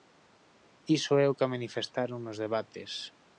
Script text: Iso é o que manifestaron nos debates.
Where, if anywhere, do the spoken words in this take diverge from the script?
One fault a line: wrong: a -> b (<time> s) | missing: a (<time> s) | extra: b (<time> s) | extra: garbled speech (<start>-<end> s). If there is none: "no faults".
no faults